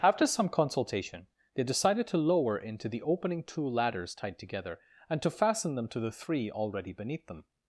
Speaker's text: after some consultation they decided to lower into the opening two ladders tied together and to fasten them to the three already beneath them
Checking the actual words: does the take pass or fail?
pass